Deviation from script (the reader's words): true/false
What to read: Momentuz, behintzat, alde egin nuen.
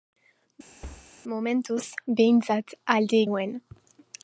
true